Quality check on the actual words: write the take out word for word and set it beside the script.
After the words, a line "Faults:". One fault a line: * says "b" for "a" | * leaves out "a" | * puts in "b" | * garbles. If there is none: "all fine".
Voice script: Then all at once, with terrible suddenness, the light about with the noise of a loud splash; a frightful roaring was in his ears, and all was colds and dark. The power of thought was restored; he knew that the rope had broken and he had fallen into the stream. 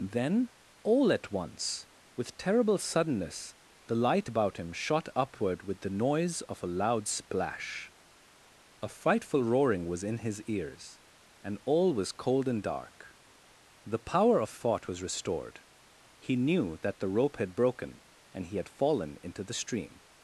Then all at once, with terrible suddenness, the light about him shot upward with the noise of a loud splash; a frightful roaring was in his ears, and all was cold and dark. The power of thought was restored; he knew that the rope had broken and he had fallen into the stream.
Faults:
* puts in "him shot upward"
* says "cold" for "colds"